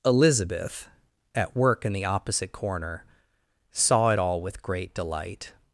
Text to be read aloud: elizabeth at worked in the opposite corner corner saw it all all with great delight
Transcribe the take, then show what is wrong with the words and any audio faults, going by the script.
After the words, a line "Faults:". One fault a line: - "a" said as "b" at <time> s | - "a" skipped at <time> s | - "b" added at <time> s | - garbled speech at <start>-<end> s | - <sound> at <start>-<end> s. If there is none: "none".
elizabeth at work in the opposite corner saw it all with great delight
Faults:
- "worked" said as "work" at 1.6 s
- "corner" skipped at 3.0 s
- "all" skipped at 4.4 s